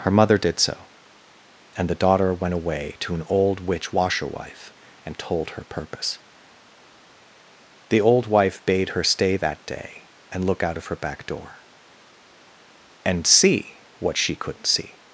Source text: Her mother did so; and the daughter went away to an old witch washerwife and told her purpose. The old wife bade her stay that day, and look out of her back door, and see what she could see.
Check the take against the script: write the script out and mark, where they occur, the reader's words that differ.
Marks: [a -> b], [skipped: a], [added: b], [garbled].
Her mother did so; and the daughter went away to an old witch washerwife and told her purpose. The old wife bade her stay that day, and look out of her back door, and see what she [could -> couldn't] see.